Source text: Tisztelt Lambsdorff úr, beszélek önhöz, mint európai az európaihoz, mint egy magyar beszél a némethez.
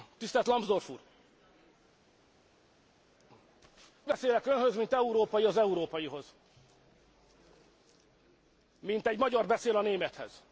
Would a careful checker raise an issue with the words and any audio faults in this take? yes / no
no